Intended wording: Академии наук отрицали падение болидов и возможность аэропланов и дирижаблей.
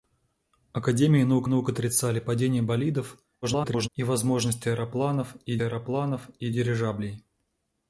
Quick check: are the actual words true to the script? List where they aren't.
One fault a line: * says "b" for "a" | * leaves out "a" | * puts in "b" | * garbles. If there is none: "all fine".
* puts in "наук"
* garbles
* puts in "аэропланов и"